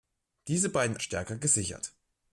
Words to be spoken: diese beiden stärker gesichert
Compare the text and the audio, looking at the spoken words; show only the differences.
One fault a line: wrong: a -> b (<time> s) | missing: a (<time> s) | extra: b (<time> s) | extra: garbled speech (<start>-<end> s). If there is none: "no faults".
no faults